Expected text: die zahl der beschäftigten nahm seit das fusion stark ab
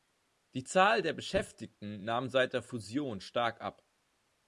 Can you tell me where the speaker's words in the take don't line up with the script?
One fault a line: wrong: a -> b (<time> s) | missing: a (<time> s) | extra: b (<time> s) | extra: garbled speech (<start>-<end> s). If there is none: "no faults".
wrong: das -> der (2.5 s)